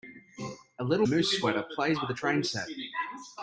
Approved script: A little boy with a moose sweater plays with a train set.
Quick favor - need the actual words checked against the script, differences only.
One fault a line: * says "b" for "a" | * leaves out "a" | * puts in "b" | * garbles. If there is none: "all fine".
* leaves out "boy with"